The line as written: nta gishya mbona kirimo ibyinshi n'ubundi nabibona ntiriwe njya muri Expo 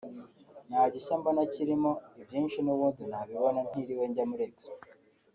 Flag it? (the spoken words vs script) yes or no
no